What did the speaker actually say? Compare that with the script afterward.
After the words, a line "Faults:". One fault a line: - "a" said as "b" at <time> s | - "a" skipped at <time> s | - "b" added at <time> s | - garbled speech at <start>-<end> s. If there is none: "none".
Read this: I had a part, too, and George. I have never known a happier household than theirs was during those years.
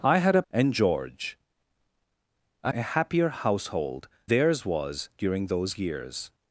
I had a and George. I a happier household theirs was during those years.
Faults:
- "part too" skipped at 0.4 s
- "have never known" skipped at 2.7 s
- "than" skipped at 4.1 s